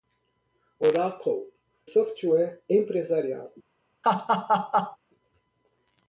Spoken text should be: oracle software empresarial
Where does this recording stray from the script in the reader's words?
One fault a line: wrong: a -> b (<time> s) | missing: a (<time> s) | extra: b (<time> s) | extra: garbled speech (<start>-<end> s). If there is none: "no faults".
no faults